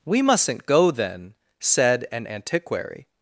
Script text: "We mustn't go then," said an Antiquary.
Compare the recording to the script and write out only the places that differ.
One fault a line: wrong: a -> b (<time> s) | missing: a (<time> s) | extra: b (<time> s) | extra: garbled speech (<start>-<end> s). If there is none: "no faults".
no faults